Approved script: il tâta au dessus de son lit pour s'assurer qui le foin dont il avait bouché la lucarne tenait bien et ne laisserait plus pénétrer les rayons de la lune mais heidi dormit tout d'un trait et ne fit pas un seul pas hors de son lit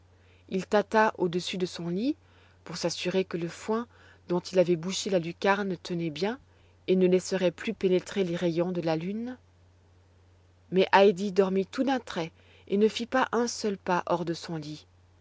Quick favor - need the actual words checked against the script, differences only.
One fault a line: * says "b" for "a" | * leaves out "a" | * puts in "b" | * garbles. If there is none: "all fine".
* says "que" for "qui"